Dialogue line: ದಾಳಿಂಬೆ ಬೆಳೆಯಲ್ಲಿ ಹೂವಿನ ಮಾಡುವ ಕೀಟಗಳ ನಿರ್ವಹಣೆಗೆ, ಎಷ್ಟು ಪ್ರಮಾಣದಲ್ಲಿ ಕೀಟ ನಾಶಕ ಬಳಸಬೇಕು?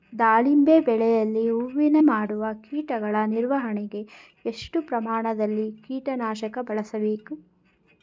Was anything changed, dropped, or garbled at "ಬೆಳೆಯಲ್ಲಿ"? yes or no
no